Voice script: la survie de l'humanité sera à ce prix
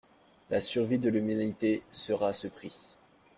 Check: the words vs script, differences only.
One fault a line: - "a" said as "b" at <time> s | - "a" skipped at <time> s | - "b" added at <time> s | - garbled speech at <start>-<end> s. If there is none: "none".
none